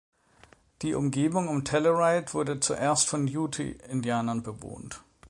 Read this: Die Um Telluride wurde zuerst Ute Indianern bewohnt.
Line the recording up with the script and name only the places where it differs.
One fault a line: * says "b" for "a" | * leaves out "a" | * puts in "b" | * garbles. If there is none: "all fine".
* puts in "Umgebung"
* puts in "von"